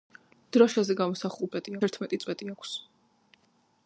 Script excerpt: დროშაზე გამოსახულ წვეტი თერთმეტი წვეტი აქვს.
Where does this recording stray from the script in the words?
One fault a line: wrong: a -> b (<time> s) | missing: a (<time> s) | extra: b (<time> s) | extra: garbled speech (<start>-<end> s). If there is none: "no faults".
no faults